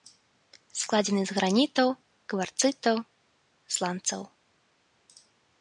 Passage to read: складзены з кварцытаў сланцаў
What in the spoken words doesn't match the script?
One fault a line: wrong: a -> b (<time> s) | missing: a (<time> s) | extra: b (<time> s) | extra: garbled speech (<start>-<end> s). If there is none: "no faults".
extra: гранітаў (1.4 s)